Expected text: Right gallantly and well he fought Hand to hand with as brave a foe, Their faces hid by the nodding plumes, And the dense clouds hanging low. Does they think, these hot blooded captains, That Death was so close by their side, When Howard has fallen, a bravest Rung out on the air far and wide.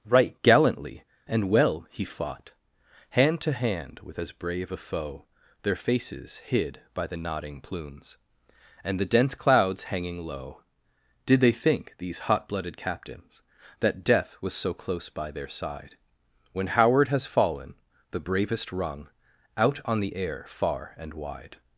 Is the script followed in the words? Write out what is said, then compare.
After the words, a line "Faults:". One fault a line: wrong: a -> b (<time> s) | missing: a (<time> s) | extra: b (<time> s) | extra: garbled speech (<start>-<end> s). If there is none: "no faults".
Right gallantly and well he fought Hand to hand with as brave a foe, Their faces hid by the nodding plumes, And the dense clouds hanging low. Did they think, these hot blooded captains, That Death was so close by their side, When Howard has fallen, the bravest Rung out on the air far and wide.
Faults:
wrong: Does -> Did (11.2 s)
wrong: a -> the (18.1 s)